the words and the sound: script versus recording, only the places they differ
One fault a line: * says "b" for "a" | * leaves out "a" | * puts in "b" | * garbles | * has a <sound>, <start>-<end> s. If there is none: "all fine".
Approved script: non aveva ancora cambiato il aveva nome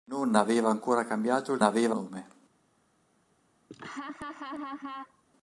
* has a laugh, 3.7-5.2 s